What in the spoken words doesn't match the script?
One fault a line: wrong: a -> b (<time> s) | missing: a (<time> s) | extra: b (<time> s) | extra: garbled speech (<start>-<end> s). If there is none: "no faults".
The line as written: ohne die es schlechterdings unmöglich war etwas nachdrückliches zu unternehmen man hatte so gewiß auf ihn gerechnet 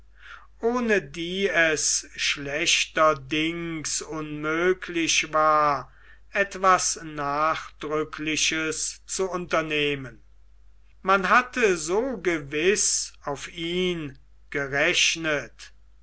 no faults